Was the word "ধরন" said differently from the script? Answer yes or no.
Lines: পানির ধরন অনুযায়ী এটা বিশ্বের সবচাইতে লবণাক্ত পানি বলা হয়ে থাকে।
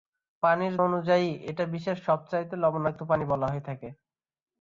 yes